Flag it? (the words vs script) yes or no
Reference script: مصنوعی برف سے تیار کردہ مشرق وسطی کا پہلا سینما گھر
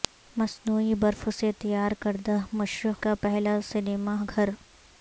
yes